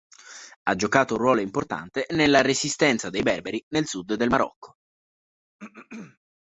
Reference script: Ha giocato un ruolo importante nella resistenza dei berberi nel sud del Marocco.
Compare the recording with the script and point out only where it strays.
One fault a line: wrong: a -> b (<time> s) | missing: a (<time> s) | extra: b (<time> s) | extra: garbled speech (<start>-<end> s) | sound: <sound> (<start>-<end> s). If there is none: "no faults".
sound: throat clearing (5.6-6.2 s)